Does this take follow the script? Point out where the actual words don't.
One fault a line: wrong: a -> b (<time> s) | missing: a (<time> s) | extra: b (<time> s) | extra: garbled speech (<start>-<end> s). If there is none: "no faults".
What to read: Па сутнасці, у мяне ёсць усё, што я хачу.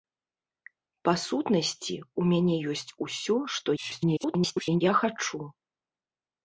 extra: garbled speech (3.8-4.8 s)